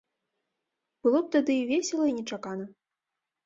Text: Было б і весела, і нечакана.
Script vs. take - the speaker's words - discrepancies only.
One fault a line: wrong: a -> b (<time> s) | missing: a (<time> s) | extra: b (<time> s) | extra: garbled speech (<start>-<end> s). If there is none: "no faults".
extra: тады (1.4 s)